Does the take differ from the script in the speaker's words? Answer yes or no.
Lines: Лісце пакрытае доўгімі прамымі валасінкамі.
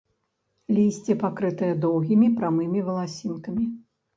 no